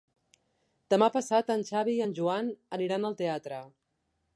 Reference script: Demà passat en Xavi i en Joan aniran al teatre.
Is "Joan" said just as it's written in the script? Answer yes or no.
yes